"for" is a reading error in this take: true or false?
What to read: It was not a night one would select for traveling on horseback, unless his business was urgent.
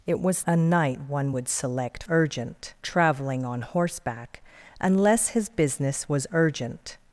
true